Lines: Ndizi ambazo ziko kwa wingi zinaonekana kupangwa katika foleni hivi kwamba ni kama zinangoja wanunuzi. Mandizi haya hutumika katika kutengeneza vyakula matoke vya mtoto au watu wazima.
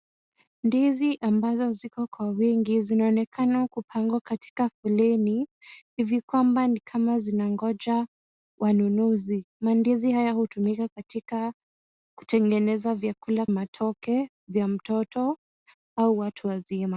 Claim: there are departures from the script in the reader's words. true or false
false